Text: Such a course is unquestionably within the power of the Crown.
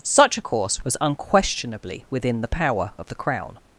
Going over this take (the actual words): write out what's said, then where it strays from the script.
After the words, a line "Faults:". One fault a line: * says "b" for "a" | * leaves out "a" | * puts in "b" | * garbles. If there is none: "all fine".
Such a course was unquestionably within the power of the Crown.
Faults:
* says "was" for "is"